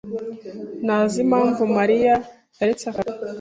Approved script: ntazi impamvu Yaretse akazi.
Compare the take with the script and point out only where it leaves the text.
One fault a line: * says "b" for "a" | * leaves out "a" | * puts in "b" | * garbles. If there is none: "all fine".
* puts in "Mariya"